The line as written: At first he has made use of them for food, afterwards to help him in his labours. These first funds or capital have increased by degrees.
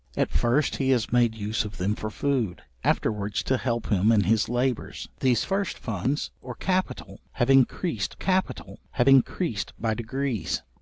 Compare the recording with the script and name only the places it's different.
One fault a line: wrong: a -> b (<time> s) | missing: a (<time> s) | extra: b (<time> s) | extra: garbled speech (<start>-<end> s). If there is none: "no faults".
extra: capital have increased (8.1 s)